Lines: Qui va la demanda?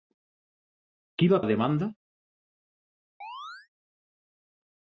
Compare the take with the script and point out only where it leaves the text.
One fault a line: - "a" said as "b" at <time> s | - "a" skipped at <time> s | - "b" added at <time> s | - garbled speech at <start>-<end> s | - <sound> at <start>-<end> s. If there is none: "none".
- chirp at 3.2-3.7 s